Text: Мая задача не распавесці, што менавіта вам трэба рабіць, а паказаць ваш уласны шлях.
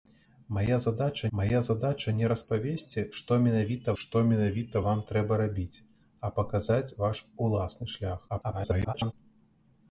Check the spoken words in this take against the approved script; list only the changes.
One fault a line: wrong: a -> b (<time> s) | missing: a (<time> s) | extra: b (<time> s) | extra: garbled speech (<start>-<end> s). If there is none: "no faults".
extra: мая задача (1.4 s)
extra: што менавіта (4.0 s)
extra: garbled speech (8.3-9.1 s)